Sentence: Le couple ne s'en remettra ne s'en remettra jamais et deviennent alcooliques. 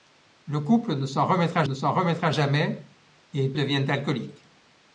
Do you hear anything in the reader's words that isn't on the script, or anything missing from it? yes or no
no